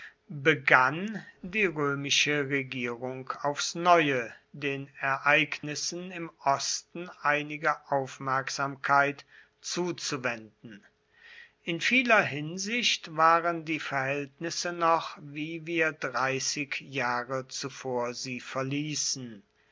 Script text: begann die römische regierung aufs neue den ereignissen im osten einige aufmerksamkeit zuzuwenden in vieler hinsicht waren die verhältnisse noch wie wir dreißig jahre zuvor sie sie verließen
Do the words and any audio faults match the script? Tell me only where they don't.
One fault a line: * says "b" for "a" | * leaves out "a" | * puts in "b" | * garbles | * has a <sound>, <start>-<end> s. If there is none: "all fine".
* has a dropout, 5.6-5.6 s
* leaves out "sie"